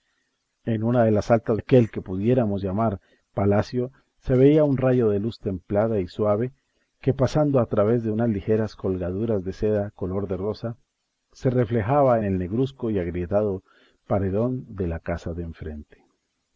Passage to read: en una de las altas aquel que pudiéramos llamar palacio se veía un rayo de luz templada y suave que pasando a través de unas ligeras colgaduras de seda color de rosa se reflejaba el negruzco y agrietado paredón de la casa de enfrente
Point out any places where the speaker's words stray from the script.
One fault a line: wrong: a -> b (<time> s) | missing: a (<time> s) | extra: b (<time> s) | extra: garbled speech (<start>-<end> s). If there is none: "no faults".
no faults